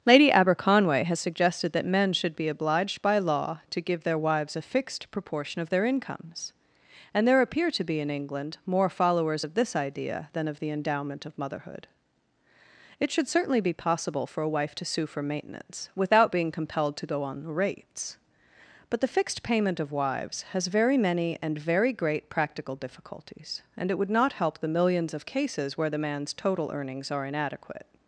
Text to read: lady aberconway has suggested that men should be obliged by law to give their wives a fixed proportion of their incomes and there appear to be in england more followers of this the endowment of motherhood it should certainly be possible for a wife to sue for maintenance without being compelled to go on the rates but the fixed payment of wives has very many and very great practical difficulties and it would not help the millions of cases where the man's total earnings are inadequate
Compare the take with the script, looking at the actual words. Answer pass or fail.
fail